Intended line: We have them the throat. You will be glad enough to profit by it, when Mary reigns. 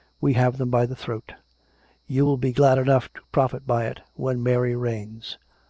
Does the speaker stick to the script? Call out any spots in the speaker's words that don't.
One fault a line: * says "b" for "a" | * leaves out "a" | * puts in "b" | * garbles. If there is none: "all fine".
* puts in "by"